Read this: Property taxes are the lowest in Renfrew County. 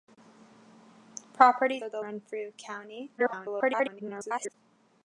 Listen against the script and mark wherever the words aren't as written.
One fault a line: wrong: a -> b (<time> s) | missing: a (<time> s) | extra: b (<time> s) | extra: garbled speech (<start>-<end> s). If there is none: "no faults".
missing: taxes (1.8 s)
missing: lowest in (2.0 s)
extra: garbled speech (3.2-4.5 s)